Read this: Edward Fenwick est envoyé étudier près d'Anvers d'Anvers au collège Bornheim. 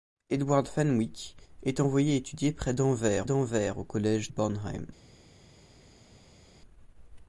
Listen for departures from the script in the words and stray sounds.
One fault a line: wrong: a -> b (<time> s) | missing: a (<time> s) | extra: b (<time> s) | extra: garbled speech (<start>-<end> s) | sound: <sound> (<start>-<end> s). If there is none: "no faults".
no faults